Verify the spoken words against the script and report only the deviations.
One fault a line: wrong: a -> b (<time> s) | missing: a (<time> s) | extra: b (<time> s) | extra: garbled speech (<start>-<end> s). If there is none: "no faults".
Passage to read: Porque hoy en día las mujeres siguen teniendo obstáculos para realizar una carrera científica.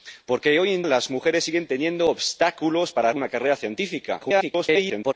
missing: día (0.8 s)
missing: realizar (3.1 s)
extra: garbled speech (4.2-5.1 s)